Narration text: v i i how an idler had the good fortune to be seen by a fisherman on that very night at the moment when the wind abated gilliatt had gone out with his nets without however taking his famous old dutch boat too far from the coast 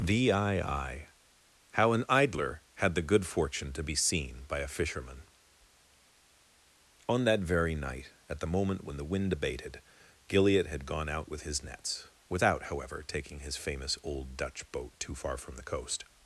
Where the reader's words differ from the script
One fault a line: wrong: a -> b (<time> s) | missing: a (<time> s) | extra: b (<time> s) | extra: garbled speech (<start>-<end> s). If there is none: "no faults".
no faults